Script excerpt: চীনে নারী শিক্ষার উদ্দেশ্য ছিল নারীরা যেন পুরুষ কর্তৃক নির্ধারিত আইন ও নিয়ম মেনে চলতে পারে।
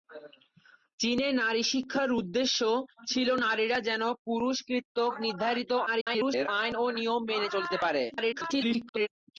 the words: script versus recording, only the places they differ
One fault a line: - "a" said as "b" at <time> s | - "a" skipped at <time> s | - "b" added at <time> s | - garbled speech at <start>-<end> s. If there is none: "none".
- garbled speech at 5.9-6.5 s
- garbled speech at 8.1-9.1 s